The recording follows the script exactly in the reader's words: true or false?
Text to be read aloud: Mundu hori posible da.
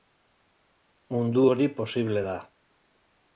true